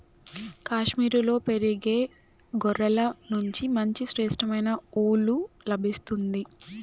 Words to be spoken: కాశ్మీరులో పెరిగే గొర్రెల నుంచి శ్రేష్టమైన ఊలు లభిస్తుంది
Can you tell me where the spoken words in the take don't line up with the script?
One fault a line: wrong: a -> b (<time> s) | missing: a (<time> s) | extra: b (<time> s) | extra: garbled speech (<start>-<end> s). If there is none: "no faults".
extra: మంచి (3.8 s)